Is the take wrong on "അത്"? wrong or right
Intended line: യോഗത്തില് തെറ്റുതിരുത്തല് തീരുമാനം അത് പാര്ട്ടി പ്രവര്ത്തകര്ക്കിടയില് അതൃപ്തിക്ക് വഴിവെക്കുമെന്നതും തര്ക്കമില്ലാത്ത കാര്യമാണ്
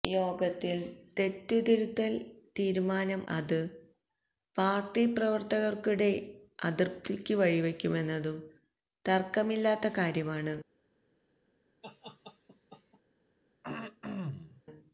right